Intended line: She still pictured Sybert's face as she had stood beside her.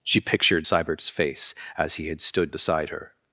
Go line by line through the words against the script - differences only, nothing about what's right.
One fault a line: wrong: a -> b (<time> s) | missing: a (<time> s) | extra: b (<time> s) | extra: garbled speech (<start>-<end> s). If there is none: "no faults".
missing: still (0.2 s)
wrong: she -> he (2.0 s)